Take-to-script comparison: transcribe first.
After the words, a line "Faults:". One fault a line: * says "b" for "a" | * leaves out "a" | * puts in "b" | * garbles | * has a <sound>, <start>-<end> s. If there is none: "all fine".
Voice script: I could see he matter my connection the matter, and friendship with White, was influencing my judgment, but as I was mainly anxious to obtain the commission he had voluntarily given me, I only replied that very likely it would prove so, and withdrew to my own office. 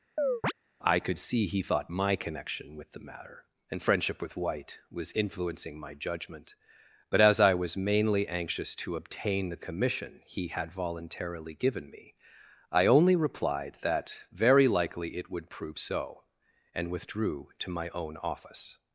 I could see he thought my connection with the matter, and friendship with White, was influencing my judgment, but as I was mainly anxious to obtain the commission he had voluntarily given me, I only replied that very likely it would prove so, and withdrew to my own office.
Faults:
* has a chirp, 0.2-0.5 s
* says "thought" for "matter"
* puts in "with"